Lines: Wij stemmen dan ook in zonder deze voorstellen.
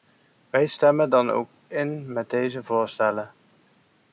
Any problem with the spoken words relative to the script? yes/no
yes